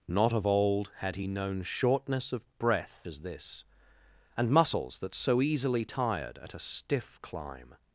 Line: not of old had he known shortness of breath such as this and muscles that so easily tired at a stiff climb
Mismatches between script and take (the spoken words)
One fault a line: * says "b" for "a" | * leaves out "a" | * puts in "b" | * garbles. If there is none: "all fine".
* leaves out "such"